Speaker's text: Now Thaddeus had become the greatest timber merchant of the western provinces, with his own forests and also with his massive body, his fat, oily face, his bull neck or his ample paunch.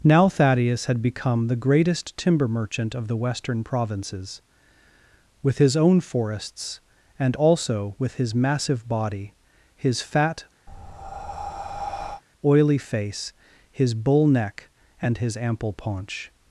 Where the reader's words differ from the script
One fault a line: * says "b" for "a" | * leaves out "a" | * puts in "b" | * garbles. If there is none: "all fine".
* says "and" for "or"